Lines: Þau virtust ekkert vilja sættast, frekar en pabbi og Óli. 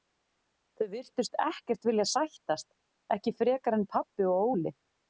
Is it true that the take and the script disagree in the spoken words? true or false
true